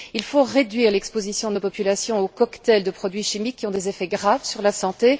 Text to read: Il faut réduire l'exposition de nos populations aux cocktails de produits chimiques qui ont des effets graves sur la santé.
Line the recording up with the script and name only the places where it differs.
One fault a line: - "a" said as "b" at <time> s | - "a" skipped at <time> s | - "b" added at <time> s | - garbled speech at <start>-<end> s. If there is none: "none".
none